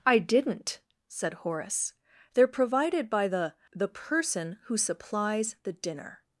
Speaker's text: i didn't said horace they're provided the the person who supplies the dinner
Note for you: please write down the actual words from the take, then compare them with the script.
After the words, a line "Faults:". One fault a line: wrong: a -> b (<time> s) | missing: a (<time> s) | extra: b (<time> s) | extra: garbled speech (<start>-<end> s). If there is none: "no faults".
i didn't said horace they're provided by the the person who supplies the dinner
Faults:
extra: by (3.1 s)